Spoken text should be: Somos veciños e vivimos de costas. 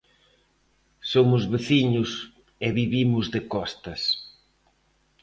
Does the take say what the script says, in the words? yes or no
yes